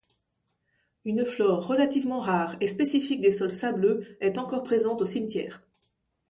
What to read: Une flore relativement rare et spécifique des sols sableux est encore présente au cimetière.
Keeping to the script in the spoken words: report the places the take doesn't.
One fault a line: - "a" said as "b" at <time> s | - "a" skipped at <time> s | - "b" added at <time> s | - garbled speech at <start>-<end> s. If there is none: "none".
none